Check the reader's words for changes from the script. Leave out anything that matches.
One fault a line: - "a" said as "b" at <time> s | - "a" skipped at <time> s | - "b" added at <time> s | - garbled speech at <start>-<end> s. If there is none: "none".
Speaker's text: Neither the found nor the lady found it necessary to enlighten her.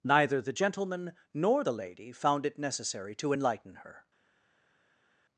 - "found" said as "gentleman" at 0.5 s